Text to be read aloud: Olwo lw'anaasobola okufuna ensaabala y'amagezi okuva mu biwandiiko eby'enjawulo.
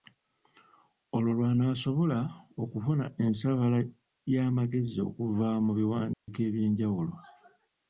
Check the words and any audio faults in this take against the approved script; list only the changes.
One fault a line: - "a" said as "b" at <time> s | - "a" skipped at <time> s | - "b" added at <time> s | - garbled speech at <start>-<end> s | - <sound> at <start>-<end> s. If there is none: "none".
- dropout at 6.1-6.3 s